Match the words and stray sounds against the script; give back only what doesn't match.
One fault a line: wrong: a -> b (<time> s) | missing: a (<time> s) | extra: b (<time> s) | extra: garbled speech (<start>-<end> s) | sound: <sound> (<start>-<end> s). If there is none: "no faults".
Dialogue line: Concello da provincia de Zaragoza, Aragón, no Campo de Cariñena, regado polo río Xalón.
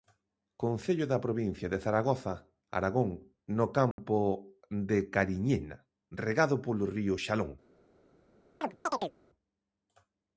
sound: dropout (3.9-4.0 s)
sound: chirp (8.6-9.1 s)